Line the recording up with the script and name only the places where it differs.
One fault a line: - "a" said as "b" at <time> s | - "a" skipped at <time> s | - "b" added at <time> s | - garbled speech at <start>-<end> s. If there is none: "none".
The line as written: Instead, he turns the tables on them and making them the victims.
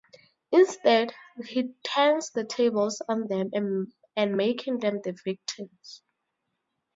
none